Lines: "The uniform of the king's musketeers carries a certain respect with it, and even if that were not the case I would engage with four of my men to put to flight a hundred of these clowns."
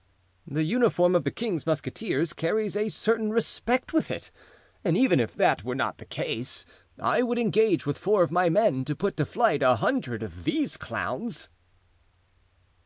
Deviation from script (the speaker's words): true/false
false